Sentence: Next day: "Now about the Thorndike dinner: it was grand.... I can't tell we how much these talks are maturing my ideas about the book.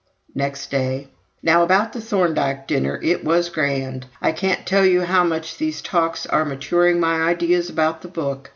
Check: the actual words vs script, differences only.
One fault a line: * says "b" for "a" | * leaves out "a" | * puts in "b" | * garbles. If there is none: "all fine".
* says "you" for "we"